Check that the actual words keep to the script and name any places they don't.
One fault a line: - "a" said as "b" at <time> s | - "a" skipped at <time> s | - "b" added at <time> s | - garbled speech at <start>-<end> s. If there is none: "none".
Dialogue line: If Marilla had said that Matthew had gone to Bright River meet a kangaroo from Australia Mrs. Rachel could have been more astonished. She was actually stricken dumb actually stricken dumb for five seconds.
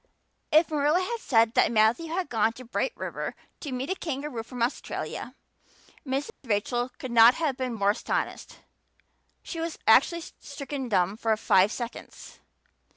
- "to" added at 3.6 s
- "not" added at 7.1 s
- "actually stricken dumb" skipped at 11.2 s